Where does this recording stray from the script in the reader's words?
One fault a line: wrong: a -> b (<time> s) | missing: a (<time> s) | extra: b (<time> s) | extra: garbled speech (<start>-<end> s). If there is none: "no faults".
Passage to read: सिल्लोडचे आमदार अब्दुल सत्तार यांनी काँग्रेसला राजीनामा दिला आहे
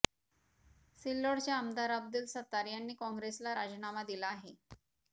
no faults